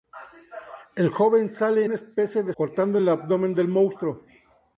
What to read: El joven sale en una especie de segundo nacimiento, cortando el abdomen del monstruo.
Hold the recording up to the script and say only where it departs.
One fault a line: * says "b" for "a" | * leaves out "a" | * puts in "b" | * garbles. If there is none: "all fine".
* leaves out "en"
* leaves out "segundo nacimiento"